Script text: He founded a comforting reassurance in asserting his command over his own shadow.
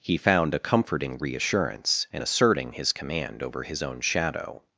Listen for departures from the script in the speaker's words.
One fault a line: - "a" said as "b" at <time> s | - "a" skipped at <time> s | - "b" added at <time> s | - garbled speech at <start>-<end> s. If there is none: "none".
- "founded" said as "found" at 0.2 s